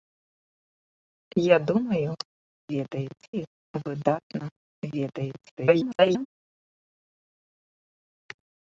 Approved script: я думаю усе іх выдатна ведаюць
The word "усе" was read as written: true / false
false